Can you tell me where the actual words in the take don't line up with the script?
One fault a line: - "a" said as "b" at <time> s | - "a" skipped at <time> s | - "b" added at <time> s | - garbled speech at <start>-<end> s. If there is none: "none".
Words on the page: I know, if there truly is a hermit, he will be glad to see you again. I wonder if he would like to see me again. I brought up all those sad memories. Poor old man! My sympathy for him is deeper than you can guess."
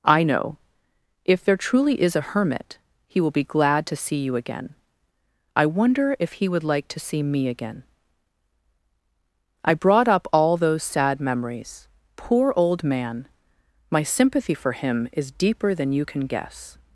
none